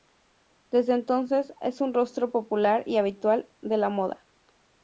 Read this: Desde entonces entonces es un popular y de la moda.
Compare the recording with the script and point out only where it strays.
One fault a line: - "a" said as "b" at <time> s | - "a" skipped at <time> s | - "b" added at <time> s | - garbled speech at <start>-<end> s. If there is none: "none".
- "entonces" skipped at 1.5 s
- "rostro" added at 1.9 s
- "habitual" added at 3.0 s